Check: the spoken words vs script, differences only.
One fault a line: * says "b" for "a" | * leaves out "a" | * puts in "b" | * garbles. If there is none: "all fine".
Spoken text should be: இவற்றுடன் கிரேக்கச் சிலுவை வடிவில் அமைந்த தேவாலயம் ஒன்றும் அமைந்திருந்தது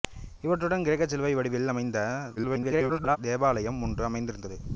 * garbles